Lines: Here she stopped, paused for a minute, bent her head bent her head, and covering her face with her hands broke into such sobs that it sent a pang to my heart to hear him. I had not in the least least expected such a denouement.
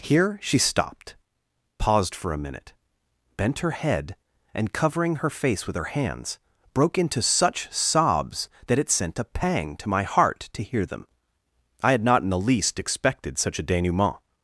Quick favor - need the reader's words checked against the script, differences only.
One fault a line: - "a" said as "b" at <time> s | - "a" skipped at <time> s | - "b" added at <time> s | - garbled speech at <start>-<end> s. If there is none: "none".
- "bent her head" skipped at 4.2 s
- "him" said as "them" at 10.9 s
- "least" skipped at 12.8 s